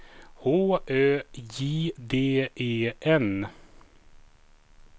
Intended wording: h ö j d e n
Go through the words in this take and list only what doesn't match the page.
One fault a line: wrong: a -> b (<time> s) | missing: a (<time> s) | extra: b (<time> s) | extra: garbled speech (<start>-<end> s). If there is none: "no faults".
no faults